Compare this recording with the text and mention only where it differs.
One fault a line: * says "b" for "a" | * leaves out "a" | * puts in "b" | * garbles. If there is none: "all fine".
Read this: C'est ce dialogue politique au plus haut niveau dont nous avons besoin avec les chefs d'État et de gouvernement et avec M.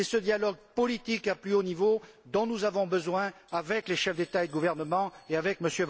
all fine